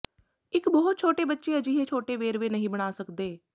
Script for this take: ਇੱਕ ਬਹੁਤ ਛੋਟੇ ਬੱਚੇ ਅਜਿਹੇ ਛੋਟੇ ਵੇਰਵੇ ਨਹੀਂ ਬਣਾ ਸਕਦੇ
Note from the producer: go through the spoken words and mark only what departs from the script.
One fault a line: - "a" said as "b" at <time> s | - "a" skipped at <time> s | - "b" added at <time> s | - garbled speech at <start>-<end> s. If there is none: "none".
none